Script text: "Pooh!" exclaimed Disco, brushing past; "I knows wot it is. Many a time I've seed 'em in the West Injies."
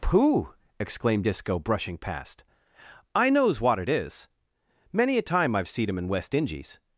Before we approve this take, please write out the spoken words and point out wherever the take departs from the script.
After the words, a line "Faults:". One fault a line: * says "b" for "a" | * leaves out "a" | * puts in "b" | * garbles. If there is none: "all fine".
"Pooh!" exclaimed Disco, brushing past; "I knows wot it is. Many a time I've seed 'em in West Injies."
Faults:
* leaves out "the"